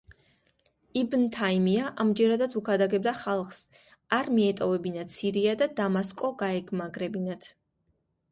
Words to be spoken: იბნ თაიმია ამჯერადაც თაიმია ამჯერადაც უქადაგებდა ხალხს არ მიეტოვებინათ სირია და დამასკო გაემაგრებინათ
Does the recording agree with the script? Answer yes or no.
no